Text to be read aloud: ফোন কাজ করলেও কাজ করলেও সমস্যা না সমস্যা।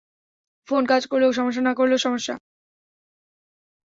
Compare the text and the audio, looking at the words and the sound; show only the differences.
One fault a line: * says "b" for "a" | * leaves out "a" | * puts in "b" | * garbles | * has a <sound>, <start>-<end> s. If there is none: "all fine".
* leaves out "কাজ করলেও"
* puts in "করলেও"